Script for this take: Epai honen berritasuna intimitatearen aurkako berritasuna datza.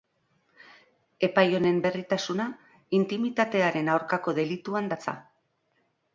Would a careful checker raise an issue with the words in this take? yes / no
yes